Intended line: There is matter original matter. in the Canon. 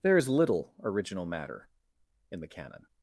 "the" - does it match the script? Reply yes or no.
yes